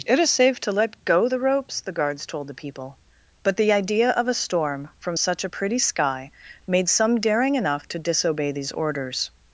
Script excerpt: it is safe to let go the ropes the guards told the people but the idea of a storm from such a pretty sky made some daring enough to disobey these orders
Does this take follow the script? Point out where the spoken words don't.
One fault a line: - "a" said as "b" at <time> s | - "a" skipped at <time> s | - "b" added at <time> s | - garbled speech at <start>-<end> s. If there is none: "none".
none